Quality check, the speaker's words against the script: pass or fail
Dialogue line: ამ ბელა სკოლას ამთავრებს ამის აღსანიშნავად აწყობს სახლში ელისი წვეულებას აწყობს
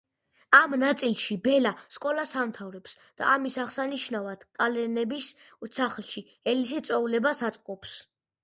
fail